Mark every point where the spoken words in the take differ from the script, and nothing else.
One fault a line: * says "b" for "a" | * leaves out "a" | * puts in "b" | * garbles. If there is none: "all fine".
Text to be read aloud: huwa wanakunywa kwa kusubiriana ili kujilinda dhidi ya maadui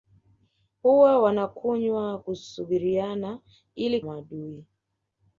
* leaves out "kwa"
* leaves out "kujilinda dhidi ya"